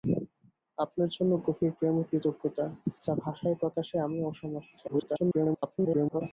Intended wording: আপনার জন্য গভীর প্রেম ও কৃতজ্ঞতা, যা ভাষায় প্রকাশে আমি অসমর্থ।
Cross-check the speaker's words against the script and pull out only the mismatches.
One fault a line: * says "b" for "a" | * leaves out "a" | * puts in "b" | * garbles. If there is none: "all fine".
* garbles